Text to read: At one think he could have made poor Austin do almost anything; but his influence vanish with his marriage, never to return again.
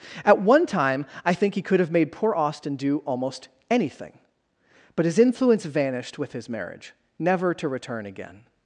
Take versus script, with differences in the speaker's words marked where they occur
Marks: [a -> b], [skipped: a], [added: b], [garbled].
At one [added: time I] think he could have made poor Austin do almost anything; but his influence [vanish -> vanished] with his marriage, never to return again.